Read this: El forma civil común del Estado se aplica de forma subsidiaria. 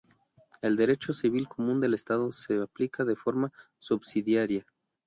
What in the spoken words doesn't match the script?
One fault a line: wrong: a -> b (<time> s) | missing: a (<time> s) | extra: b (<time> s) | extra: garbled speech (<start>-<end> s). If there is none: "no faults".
wrong: forma -> derecho (0.8 s)